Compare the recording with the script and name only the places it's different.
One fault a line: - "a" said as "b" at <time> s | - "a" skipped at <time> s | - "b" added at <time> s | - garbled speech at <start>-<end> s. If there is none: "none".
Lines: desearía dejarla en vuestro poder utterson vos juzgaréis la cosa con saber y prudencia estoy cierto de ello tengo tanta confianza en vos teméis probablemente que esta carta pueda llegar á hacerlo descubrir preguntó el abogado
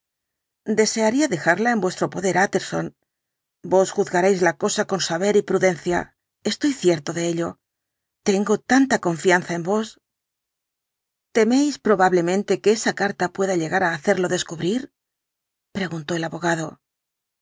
- "esta" said as "esa" at 12.8 s